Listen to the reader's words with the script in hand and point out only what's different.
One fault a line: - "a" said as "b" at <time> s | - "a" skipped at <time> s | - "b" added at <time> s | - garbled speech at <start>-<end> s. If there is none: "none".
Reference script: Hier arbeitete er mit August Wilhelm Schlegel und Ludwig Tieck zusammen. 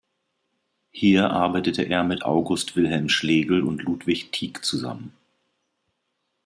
none